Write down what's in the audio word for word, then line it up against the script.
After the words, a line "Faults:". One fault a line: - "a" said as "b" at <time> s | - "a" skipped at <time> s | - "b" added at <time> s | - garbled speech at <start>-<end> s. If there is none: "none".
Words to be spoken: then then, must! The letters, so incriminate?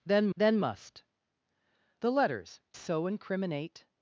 then then, must! The letters, so incriminate?
Faults:
none